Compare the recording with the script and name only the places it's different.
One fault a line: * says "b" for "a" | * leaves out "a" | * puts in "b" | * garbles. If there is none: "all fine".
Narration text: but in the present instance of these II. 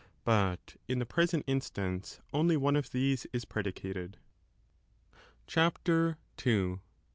* puts in "only one"
* puts in "is predicated CHAPTER"